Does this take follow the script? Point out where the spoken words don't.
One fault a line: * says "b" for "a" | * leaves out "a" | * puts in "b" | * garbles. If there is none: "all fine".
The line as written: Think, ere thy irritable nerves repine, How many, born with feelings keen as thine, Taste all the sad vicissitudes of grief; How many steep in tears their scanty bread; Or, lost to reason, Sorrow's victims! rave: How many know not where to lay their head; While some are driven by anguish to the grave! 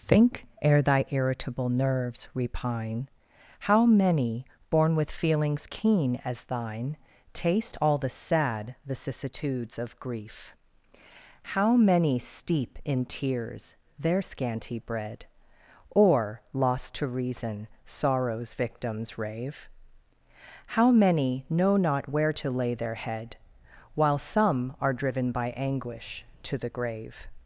all fine